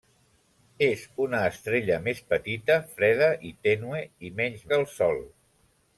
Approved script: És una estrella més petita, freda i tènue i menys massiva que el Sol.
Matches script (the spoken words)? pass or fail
fail